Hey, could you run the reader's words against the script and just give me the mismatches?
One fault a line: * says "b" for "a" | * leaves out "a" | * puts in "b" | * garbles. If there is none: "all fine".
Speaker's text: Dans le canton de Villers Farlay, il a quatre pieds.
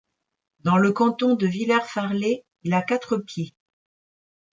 all fine